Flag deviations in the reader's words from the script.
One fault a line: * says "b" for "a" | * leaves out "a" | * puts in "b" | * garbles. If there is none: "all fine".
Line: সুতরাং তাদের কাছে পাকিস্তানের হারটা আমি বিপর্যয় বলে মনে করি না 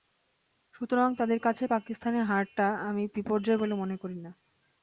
all fine